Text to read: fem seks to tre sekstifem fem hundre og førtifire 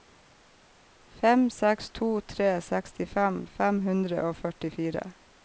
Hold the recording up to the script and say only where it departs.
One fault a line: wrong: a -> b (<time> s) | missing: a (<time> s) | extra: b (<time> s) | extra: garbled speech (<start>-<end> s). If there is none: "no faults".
no faults